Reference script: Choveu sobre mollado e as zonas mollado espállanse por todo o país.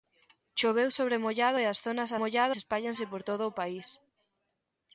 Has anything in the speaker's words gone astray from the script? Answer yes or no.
no